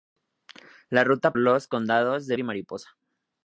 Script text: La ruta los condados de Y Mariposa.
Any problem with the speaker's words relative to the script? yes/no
no